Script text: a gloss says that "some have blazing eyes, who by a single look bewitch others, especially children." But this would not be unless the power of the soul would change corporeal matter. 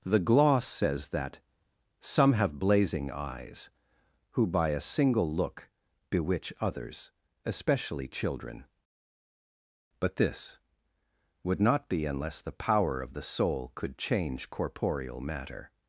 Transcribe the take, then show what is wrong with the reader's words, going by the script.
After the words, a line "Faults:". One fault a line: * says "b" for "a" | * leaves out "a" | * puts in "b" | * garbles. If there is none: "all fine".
the gloss says that "some have blazing eyes, who by a single look bewitch others, especially children." But this would not be unless the power of the soul could change corporeal matter.
Faults:
* says "the" for "a"
* says "could" for "would"